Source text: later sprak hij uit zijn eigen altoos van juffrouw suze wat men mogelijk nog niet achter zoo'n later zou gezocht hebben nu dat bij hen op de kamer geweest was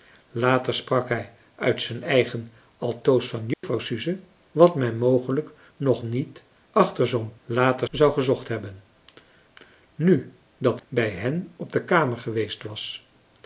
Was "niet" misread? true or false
false